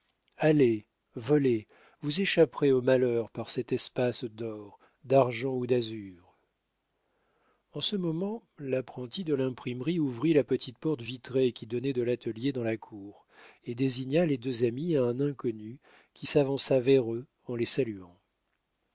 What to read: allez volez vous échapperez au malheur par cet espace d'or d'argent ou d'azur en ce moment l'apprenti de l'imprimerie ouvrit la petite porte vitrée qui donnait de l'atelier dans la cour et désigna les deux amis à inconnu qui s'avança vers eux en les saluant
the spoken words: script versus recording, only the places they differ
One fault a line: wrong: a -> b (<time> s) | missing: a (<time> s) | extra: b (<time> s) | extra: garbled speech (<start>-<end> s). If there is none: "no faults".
extra: un (15.0 s)